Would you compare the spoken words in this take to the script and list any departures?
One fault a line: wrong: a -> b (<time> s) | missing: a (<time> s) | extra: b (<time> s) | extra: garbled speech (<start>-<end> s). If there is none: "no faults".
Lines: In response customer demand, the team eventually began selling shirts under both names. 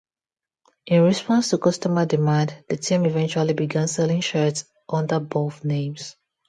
extra: to (1.5 s)